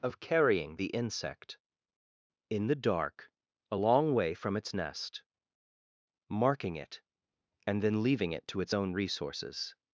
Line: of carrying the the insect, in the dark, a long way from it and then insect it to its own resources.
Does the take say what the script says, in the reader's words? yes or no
no